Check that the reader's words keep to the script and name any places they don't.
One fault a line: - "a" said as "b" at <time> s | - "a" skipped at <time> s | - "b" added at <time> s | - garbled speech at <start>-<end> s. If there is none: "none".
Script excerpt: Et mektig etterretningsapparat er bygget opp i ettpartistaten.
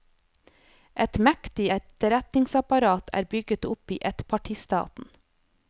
none